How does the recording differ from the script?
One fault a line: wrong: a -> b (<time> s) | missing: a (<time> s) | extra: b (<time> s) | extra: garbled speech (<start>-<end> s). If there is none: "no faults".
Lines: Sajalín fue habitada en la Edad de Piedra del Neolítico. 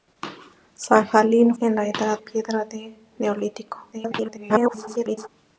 missing: fue habitada (1.5 s)
missing: de (2.2 s)
extra: garbled speech (3.9-5.3 s)